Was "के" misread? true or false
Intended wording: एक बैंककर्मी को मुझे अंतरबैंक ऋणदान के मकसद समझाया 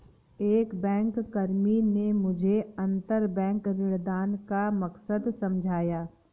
true